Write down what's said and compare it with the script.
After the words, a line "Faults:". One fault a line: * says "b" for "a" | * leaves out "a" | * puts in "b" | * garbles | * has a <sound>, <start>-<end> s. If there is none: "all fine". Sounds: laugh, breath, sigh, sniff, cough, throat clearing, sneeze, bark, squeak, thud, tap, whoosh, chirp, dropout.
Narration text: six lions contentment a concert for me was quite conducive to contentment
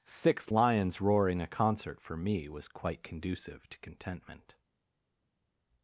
six lions roaring a concert for me was quite conducive to contentment
Faults:
* says "roaring" for "contentment"